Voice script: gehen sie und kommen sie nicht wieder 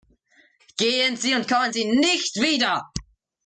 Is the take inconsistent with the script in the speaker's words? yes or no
no